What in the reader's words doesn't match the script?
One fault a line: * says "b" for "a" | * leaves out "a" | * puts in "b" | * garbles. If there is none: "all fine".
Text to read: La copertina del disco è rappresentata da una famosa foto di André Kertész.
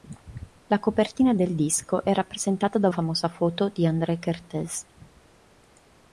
* leaves out "una"